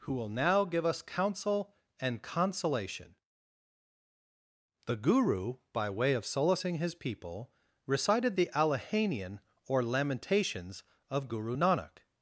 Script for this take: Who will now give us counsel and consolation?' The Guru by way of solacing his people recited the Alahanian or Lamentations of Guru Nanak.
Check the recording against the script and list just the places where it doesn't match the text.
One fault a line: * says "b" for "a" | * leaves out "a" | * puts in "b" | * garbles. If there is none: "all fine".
all fine